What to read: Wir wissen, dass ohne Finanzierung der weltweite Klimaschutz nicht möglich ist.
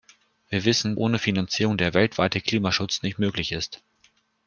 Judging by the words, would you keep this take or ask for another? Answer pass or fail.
fail